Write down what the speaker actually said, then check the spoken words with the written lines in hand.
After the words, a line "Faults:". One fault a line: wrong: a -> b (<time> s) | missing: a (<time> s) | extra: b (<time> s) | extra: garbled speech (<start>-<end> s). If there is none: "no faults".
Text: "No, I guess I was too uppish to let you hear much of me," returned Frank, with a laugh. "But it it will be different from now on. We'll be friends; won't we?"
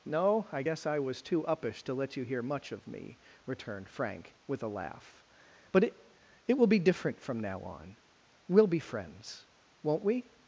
"No, I guess I was too uppish to let you hear much of me," returned Frank, with a laugh. "But it it will be different from now on. We'll be friends; won't we?"
Faults:
no faults